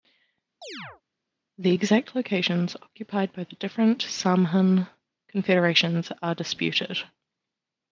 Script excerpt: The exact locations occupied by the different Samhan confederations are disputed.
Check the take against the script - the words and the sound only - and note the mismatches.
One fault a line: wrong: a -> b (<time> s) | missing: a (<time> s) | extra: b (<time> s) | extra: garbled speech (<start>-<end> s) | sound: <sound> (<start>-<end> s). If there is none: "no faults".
sound: chirp (0.6-1.0 s)